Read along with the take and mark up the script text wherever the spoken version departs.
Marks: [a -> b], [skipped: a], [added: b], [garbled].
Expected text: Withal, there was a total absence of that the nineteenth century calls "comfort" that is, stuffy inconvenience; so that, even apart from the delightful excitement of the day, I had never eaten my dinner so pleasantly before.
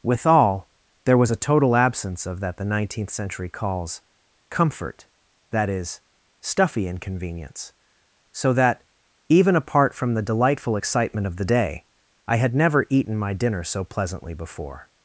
Withal, there was a total absence of that the nineteenth century calls "comfort" that is, stuffy inconvenience; so that, even apart from the delightful excitement of the day, I had never eaten my dinner so pleasantly before.